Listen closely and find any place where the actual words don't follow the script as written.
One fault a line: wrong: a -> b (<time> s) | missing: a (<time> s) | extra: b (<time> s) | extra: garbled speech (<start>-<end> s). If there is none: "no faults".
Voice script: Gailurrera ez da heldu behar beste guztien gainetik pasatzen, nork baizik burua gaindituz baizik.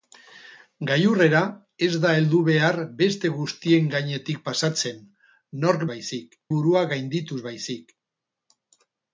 no faults